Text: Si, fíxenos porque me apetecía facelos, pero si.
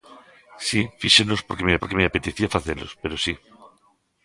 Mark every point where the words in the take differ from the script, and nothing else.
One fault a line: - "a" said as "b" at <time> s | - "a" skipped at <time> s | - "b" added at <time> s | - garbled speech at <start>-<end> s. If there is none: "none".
- "porque me" added at 1.8 s